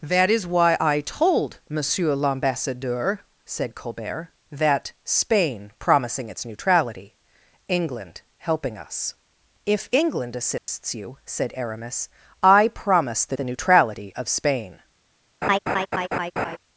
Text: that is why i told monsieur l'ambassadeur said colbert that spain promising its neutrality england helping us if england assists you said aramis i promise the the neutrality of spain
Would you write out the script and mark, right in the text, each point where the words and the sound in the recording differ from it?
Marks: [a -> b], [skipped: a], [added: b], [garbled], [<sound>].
that is why i told monsieur l'ambassadeur said colbert that spain promising its neutrality england helping us if england assists [dropout] you said aramis i promise the the neutrality of spain [laugh]